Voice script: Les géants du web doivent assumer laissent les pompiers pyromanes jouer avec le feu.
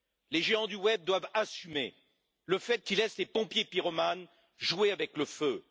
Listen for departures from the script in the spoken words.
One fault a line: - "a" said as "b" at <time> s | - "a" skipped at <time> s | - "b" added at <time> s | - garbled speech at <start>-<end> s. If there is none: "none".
- "le fait qu'ils" added at 2.5 s